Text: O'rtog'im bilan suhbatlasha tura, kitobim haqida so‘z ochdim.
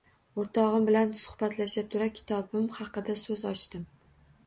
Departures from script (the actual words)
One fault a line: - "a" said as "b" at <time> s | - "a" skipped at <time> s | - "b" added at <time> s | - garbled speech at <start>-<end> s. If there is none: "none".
none